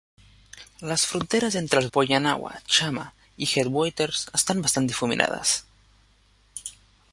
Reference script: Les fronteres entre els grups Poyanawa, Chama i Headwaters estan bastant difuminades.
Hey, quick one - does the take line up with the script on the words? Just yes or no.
no